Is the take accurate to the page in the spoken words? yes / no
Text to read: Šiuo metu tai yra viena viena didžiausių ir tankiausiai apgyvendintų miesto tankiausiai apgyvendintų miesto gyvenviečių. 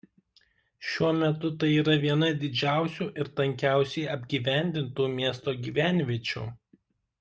no